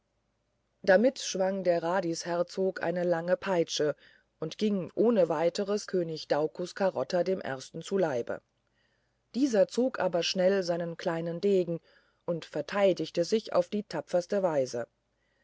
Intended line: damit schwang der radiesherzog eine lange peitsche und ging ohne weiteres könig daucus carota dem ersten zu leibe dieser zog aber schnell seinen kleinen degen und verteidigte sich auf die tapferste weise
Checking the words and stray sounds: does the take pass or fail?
pass